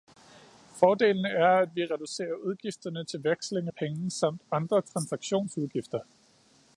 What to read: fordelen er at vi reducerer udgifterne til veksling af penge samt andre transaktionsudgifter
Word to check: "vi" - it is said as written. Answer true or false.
true